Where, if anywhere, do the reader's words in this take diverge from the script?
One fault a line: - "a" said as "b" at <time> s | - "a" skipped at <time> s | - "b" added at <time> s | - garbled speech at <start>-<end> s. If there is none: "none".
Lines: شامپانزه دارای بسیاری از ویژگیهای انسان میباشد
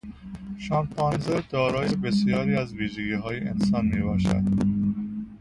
none